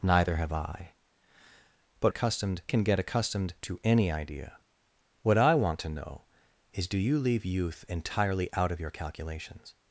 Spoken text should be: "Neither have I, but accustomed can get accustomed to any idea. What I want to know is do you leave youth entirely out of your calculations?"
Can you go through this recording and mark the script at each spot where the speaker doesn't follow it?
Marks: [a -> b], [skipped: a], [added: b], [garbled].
"Neither have I, but accustomed can get accustomed to any idea. What I want to know is do you leave youth entirely out of your calculations?"